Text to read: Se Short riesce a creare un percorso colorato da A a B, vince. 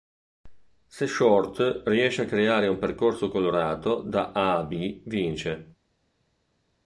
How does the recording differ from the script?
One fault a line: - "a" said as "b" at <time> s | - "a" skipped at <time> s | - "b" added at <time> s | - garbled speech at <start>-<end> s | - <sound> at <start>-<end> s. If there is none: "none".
none